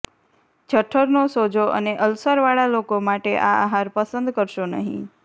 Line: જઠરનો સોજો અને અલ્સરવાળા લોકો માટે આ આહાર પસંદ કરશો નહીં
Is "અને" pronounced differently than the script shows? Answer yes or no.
no